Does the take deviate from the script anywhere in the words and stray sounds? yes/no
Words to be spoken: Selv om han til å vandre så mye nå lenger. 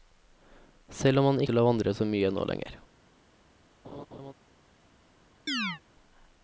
yes